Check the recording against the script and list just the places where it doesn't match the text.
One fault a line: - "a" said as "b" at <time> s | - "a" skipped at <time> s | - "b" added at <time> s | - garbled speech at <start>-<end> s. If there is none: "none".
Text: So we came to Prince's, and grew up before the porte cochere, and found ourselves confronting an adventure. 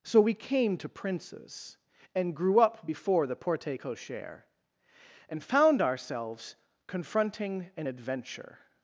none